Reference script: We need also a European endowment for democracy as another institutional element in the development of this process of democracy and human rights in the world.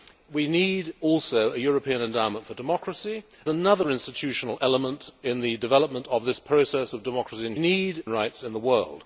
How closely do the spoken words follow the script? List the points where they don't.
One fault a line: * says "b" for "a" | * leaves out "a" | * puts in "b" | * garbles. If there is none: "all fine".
* leaves out "as"
* says "need" for "human"